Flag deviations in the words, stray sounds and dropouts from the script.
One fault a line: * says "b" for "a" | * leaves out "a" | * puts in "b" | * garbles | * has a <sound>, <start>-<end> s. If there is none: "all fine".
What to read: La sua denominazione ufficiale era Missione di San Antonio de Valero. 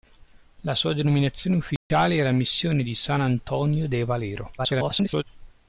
* has a dropout, 1.8-1.9 s
* garbles